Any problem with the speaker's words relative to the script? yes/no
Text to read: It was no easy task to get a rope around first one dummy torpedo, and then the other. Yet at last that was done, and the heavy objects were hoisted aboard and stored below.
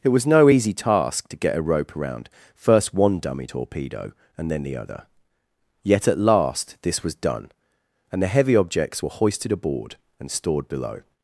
yes